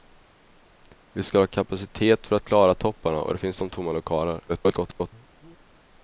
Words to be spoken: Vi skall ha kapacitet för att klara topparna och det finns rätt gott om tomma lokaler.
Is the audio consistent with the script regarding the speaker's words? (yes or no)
no